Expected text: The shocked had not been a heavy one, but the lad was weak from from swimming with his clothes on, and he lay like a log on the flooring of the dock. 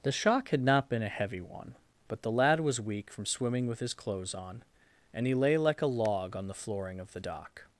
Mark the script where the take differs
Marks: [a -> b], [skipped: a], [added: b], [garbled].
The [shocked -> shock] had not been a heavy one, but the lad was weak from [skipped: from] swimming with his clothes on, and he lay like a log on the flooring of the dock.